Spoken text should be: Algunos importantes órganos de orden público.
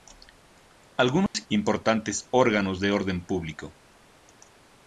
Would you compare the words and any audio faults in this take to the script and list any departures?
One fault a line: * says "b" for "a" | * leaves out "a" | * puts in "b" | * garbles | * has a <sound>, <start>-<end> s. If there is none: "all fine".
* has a dropout, 1.3-1.3 s